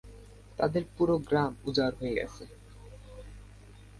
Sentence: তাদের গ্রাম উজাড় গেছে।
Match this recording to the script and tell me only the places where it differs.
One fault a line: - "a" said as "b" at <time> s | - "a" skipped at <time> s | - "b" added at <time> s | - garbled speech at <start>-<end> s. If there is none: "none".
- "পুরো" added at 0.9 s
- "হয়ে" added at 2.0 s